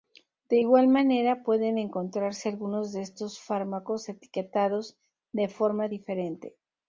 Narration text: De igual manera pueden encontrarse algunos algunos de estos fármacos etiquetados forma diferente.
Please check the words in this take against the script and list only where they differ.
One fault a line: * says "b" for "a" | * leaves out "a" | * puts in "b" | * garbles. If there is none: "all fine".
* leaves out "algunos"
* puts in "de"